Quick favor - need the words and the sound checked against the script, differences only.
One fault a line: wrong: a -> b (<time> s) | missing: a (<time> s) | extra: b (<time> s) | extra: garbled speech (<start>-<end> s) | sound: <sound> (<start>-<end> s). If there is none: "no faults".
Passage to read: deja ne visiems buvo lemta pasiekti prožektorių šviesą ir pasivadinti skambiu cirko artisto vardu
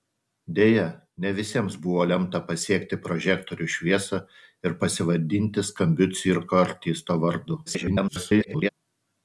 extra: garbled speech (7.7-8.7 s)